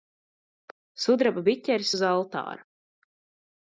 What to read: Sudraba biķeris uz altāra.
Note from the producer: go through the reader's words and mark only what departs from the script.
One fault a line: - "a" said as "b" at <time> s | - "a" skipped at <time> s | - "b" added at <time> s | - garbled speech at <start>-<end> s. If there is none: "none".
none